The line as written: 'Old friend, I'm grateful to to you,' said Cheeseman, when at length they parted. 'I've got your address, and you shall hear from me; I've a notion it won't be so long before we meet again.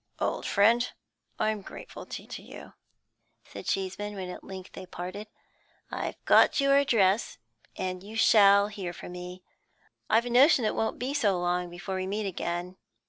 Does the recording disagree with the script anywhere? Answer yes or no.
no